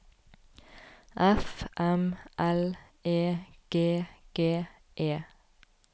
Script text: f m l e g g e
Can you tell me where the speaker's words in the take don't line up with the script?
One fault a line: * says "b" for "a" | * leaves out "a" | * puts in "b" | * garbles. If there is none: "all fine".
all fine